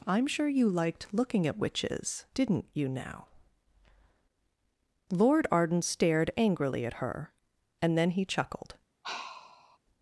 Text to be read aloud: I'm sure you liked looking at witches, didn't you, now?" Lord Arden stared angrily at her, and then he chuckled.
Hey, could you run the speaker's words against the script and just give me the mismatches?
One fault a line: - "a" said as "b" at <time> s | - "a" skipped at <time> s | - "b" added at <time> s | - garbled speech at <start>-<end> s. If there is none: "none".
none